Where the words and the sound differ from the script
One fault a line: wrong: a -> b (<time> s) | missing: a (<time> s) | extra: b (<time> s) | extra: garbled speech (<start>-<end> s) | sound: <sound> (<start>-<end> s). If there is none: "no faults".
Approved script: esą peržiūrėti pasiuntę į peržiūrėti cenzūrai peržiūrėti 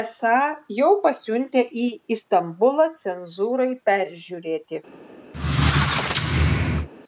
wrong: peržiūrėti -> jau (0.8 s)
wrong: peržiūrėti -> istambulą (2.1 s)
sound: squeak (5.3-6.9 s)